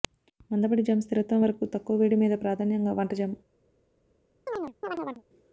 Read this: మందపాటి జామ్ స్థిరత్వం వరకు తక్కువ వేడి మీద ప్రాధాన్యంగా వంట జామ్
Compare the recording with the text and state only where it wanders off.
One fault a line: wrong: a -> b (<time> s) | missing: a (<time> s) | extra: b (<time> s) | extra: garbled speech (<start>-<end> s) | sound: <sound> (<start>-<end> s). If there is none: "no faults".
sound: chirp (4.5-5.2 s)